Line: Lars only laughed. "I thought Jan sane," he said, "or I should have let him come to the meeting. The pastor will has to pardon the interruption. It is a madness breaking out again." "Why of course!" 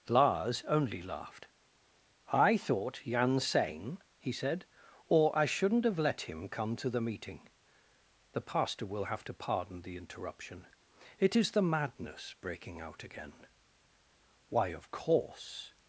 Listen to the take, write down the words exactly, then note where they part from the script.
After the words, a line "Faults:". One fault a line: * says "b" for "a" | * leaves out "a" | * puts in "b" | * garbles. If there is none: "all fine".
Lars only laughed. "I thought Jan sane," he said, "or I shouldn't have let him come to the meeting. The pastor will have to pardon the interruption. It is the madness breaking out again." "Why of course!"
Faults:
* says "shouldn't" for "should"
* says "have" for "has"
* says "the" for "a"